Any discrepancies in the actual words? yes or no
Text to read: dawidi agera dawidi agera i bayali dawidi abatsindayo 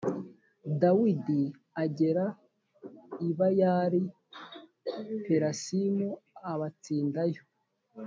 yes